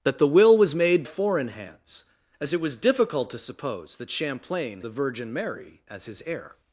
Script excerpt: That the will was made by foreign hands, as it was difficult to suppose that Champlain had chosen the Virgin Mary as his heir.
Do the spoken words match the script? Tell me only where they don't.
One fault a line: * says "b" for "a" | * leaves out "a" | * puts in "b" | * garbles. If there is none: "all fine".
* leaves out "by"
* leaves out "had chosen"